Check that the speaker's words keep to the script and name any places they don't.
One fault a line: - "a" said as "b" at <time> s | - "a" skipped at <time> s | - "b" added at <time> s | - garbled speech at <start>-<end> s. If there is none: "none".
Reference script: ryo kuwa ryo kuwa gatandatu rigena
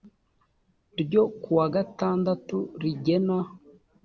- "ryo kuwa" skipped at 1.6 s